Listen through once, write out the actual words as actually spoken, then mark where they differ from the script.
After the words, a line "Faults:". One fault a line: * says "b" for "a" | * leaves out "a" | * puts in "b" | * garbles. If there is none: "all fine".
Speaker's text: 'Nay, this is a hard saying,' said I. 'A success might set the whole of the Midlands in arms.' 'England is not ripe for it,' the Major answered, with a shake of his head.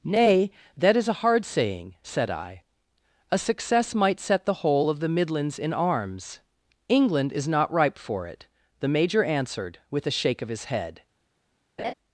'Nay, that is a hard saying,' said I. 'A success might set the whole of the Midlands in arms.' 'England is not ripe for it,' the Major answered, with a shake of his head.
Faults:
* says "that" for "this"